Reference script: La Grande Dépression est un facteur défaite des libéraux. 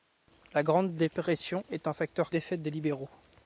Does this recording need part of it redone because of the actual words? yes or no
no